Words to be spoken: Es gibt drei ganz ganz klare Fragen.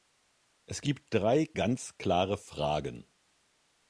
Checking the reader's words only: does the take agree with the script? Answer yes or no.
no